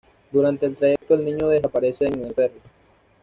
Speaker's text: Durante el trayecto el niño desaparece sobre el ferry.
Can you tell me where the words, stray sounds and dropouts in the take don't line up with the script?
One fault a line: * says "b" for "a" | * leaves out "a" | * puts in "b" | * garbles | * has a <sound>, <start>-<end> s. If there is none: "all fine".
* has a dropout, 1.0-1.0 s
* says "en" for "sobre"